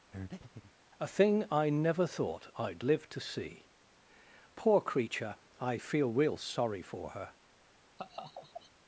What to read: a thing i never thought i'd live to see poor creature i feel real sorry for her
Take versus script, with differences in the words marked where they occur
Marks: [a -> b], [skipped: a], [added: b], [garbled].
a thing i never thought i'd live to see poor creature i feel real sorry for her